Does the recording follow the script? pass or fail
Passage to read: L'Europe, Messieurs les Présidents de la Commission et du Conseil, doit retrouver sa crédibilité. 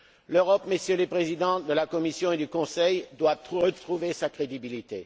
pass